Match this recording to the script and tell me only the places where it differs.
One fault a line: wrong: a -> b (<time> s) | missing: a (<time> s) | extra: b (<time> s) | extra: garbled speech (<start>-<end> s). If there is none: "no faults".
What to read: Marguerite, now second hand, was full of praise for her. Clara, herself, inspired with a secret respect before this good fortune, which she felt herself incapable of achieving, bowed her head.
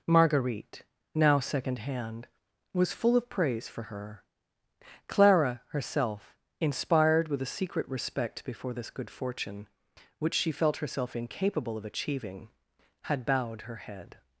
extra: had (13.0 s)